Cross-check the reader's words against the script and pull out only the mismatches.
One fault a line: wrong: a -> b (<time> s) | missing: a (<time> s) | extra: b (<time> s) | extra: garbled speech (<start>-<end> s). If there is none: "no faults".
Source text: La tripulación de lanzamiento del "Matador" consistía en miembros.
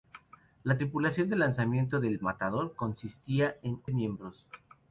no faults